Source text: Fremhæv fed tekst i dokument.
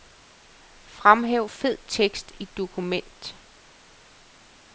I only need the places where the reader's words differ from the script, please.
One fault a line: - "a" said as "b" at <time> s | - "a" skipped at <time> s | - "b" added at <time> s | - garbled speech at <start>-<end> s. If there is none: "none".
none